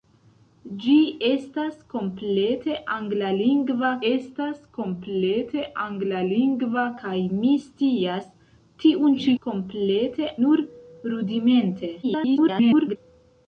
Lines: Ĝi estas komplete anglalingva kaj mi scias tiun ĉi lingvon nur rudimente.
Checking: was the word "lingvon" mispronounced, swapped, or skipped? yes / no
yes